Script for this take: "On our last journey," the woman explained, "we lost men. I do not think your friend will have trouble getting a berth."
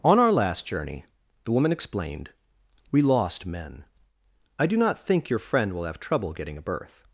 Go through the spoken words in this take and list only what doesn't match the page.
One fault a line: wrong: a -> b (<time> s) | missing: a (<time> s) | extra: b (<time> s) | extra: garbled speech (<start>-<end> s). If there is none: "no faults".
no faults